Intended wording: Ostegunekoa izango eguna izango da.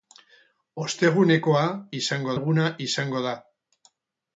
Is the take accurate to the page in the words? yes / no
yes